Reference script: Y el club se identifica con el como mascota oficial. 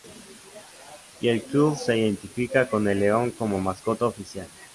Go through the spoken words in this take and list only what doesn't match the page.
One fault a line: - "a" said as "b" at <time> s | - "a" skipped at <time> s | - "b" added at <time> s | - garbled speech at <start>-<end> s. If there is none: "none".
- "león" added at 3.0 s